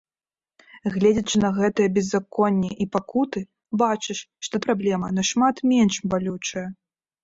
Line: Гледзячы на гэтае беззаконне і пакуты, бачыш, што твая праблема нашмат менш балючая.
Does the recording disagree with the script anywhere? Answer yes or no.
yes